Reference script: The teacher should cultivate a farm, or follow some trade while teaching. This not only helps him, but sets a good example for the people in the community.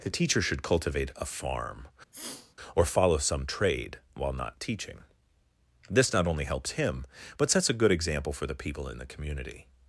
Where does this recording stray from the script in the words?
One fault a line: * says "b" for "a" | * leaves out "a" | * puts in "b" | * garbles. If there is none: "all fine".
* puts in "not"